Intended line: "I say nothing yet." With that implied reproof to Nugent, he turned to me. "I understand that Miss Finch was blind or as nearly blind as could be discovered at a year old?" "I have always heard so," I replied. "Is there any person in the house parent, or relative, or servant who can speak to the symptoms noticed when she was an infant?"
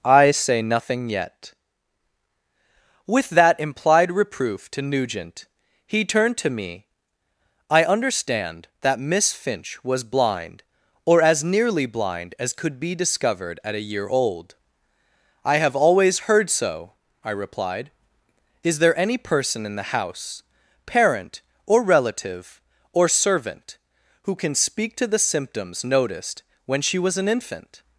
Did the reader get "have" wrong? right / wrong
right